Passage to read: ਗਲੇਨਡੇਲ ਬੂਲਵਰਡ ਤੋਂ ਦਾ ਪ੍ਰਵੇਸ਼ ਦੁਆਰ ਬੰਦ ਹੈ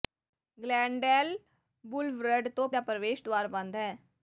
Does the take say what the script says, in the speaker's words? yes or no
yes